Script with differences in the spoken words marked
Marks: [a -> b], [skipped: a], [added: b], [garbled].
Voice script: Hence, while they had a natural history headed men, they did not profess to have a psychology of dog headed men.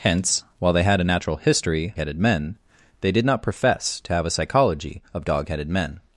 Hence, while they had a natural history headed men, they did not profess to have a psychology of dog headed men.